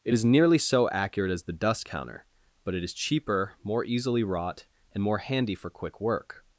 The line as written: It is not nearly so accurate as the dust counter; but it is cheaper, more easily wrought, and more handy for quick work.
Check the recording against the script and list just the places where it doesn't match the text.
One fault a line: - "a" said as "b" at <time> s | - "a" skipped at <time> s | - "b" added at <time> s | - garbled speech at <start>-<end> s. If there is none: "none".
- "not" skipped at 0.2 s